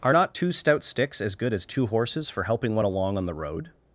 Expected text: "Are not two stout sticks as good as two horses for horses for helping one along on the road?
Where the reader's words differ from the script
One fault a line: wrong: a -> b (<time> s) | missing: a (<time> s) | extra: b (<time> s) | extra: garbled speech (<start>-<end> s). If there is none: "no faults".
missing: horses for (2.4 s)